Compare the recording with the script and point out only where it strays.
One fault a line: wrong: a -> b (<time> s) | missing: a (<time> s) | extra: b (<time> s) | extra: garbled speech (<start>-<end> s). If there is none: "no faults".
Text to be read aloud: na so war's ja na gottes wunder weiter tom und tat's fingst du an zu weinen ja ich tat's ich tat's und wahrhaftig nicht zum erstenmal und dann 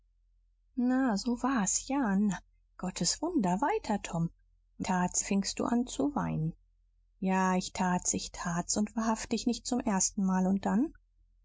no faults